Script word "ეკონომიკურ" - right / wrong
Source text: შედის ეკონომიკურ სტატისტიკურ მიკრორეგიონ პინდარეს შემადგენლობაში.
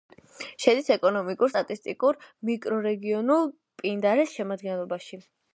right